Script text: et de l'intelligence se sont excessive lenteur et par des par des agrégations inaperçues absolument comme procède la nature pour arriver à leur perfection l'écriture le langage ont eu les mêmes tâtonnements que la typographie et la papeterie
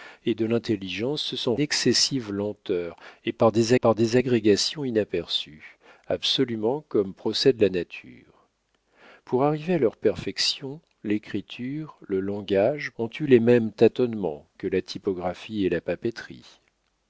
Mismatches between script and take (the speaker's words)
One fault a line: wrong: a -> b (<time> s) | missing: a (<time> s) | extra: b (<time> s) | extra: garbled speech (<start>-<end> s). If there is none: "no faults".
no faults